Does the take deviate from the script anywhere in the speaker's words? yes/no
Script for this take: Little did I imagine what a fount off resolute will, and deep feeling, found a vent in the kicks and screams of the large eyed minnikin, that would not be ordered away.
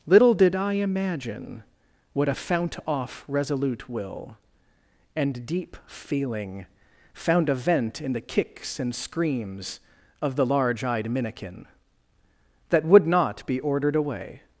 no